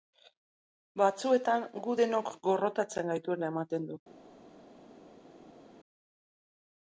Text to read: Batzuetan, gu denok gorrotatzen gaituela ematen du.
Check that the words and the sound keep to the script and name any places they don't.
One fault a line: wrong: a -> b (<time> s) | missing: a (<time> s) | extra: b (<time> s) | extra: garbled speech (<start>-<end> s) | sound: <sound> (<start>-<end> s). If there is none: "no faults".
no faults